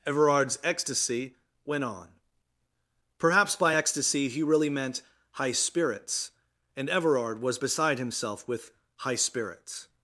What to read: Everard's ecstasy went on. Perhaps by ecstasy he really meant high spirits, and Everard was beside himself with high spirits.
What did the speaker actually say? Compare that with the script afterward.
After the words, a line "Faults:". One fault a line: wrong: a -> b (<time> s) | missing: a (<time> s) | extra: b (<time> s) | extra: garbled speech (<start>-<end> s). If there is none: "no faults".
Everard's ecstasy went on. Perhaps by ecstasy he really meant high spirits, and Everard was beside himself with high spirits.
Faults:
no faults